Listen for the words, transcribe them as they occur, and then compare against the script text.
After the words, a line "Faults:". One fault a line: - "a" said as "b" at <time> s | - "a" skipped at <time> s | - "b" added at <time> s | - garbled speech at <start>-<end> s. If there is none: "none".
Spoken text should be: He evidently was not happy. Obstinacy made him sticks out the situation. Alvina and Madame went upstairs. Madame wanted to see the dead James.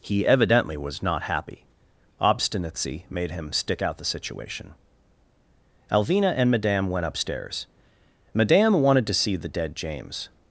He evidently was not happy. Obstinacy made him stick out the situation. Alvina and Madame went upstairs. Madame wanted to see the dead James.
Faults:
- "sticks" said as "stick" at 3.5 s